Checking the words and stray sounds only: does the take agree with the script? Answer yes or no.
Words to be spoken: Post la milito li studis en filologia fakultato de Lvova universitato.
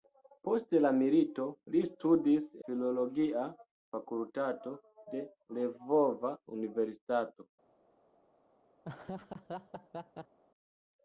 no